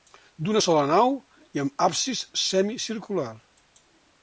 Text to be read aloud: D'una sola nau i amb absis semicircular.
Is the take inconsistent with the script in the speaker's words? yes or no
no